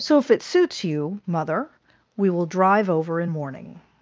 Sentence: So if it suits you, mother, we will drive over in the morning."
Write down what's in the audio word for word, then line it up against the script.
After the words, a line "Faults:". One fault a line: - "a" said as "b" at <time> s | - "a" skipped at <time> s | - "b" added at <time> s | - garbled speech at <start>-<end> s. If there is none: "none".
So if it suits you, mother, we will drive over in morning."
Faults:
- "the" skipped at 3.3 s